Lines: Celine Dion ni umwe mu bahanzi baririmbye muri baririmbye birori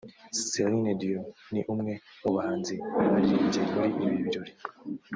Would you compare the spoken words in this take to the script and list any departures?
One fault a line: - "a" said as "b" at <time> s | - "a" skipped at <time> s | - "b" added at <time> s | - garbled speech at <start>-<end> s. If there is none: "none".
- "baririmbye" said as "ibi" at 4.0 s